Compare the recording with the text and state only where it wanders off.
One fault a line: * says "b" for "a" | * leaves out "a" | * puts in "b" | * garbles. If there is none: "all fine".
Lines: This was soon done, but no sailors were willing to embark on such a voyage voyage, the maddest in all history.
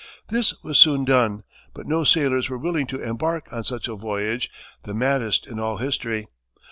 * leaves out "voyage"